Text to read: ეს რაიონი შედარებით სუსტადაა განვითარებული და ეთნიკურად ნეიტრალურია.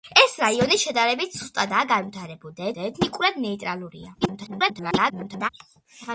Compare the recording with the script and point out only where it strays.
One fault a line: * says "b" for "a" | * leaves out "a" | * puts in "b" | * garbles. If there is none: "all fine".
* puts in "და"
* garbles